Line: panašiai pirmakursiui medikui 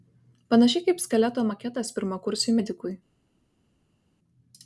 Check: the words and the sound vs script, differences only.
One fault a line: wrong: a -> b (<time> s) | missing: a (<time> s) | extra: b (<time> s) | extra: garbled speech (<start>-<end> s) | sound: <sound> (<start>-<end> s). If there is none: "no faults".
extra: kaip skeleto maketas (0.9 s)